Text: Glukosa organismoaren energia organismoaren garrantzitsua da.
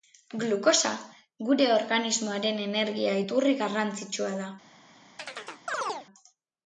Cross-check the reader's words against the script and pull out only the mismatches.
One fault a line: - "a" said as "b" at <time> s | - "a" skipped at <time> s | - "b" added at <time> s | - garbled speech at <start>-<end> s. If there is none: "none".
- "gure" added at 1.5 s
- "organismoaren" said as "iturri" at 3.3 s